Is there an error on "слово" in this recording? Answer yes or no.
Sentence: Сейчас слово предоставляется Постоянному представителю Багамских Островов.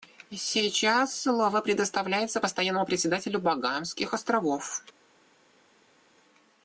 no